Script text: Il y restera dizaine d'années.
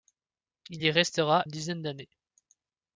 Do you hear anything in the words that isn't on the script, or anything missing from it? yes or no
no